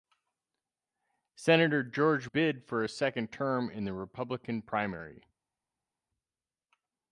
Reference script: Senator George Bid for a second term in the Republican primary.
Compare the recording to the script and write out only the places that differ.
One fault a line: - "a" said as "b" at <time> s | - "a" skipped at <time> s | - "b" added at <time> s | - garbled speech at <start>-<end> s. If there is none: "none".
none